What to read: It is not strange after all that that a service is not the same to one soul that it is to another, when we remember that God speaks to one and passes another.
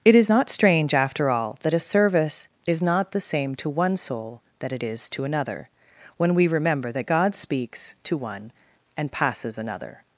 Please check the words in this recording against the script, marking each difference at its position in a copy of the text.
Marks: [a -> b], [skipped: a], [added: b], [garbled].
It is not strange after all that [skipped: that] a service is not the same to one soul that it is to another, when we remember that God speaks to one and passes another.